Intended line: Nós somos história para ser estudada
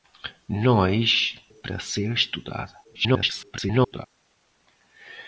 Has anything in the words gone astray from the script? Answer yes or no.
yes